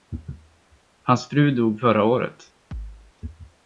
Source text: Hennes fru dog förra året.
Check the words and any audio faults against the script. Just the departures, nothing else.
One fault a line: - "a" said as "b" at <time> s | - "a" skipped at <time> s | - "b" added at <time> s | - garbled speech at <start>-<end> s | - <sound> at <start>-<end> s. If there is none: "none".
- "Hennes" said as "Hans" at 1.0 s
- thud at 2.7-3.1 s